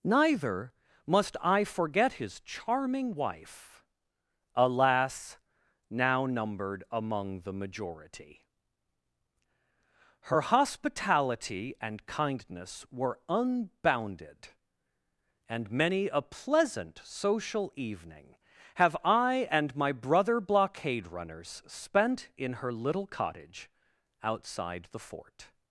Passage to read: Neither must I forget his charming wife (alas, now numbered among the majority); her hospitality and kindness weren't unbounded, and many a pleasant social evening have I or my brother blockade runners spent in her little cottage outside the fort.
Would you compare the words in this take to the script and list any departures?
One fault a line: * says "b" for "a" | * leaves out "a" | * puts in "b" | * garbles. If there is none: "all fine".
* says "were" for "weren't"
* says "and" for "or"